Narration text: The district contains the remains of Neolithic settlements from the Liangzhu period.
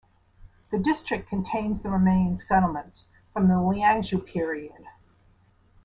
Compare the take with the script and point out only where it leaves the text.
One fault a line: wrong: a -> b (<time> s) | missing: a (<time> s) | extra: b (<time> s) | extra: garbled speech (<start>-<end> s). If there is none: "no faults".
missing: of Neolithic (2.4 s)